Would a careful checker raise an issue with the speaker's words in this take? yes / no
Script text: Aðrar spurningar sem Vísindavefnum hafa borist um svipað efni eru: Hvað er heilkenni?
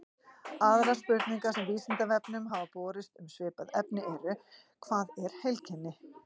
no